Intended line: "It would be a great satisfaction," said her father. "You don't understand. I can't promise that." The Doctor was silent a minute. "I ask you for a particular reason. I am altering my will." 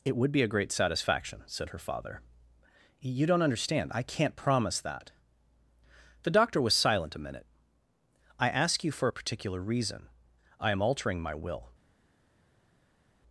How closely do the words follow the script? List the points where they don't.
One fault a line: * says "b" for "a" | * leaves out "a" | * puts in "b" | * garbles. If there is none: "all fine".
all fine